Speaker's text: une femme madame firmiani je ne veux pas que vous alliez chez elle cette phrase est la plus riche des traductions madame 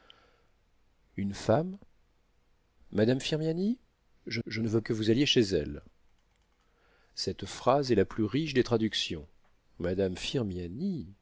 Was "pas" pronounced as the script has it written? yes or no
no